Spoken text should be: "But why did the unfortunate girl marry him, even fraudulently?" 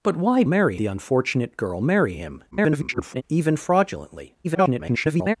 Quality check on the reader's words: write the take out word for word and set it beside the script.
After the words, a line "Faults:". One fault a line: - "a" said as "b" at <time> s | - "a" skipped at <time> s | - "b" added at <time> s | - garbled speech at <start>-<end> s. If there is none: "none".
"But why marry the unfortunate girl marry him, [garbled] even fraudulently?" [garbled]
Faults:
- "did" said as "marry" at 0.4 s
- garbled speech at 2.5-3.2 s
- garbled speech at 4.4-5.4 s